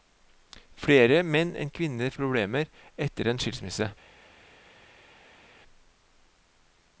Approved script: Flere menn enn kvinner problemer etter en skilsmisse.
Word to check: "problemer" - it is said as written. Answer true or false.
true